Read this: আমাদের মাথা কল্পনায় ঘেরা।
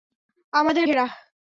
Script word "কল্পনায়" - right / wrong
wrong